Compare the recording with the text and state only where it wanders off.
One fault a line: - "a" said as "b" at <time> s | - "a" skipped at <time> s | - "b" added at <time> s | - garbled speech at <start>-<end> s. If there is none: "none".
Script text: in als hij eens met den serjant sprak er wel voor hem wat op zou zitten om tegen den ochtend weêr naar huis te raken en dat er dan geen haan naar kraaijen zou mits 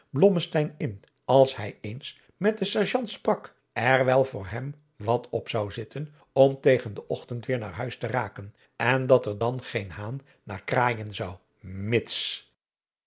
none